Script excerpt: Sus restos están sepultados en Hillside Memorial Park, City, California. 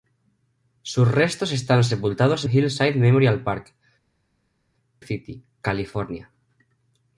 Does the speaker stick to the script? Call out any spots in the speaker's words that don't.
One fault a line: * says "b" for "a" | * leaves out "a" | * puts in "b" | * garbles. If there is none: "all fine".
all fine